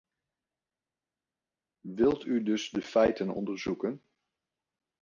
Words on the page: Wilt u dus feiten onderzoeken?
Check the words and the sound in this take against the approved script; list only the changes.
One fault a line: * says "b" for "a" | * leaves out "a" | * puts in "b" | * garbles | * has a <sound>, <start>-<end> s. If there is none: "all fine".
* puts in "de"